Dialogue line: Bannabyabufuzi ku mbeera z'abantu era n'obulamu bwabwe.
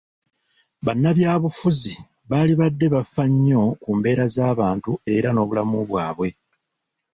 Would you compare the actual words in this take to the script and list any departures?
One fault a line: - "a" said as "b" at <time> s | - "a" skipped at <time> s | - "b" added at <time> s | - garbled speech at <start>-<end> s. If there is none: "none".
- "baalibadde bafa nnyo" added at 2.3 s